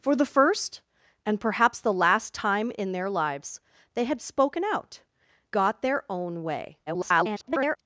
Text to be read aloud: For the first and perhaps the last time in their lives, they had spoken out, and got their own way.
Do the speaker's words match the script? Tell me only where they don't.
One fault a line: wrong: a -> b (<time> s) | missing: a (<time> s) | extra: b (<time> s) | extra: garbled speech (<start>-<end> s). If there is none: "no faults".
missing: and (5.0 s)
extra: garbled speech (6.9-7.8 s)